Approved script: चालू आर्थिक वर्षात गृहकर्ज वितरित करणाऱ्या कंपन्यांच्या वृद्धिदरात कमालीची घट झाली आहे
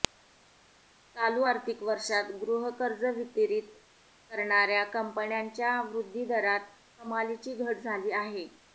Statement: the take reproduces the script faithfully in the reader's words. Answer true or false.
true